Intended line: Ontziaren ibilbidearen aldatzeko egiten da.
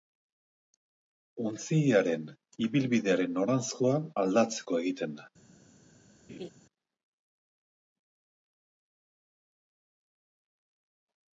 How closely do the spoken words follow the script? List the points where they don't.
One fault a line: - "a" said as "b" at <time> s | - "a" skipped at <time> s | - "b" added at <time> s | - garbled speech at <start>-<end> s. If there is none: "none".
- "noranzkoa" added at 3.4 s